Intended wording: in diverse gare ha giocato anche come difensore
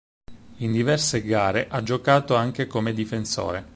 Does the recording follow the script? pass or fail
pass